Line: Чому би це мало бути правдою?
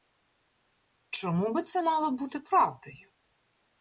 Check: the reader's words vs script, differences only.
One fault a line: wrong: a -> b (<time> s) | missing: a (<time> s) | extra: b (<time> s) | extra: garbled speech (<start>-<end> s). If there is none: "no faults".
no faults